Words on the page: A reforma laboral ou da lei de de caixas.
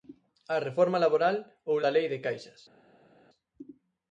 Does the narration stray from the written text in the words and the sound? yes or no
yes